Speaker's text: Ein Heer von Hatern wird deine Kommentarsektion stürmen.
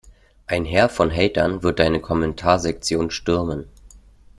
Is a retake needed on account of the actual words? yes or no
no